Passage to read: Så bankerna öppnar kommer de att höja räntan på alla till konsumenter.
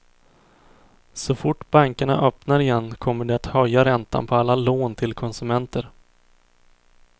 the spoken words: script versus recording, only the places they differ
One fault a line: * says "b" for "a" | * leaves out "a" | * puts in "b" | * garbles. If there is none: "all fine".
* puts in "fort"
* puts in "igen"
* puts in "lån"